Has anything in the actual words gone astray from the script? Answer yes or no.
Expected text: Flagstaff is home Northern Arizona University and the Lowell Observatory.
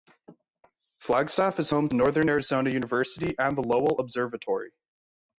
no